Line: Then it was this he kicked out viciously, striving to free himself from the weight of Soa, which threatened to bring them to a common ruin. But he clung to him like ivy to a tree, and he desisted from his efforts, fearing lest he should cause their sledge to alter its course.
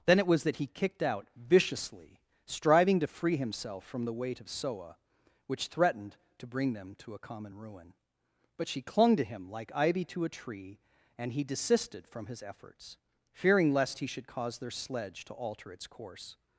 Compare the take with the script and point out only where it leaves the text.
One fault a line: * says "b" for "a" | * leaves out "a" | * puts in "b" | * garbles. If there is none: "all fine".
* says "that" for "this"
* says "she" for "he"